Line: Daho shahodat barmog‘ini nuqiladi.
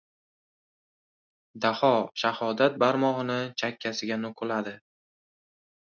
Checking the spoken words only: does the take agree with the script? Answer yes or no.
no